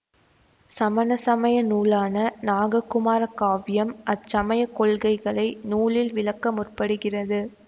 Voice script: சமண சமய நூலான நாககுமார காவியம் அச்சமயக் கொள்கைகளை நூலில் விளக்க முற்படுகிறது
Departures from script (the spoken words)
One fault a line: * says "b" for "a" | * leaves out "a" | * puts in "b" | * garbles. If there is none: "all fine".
all fine